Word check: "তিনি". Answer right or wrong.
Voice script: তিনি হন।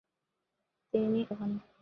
right